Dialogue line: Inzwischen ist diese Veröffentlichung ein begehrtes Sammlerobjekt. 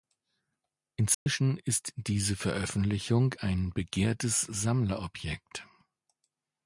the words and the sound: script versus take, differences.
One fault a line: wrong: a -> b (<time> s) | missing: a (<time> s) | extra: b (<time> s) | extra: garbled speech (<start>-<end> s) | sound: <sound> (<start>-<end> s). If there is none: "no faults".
sound: dropout (1.1-1.3 s)